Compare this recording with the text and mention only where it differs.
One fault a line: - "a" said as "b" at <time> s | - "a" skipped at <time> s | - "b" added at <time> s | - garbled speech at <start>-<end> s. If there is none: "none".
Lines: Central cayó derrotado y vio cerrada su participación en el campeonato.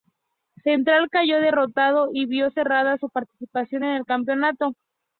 none